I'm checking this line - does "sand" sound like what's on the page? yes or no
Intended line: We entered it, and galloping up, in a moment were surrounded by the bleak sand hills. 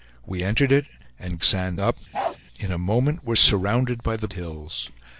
no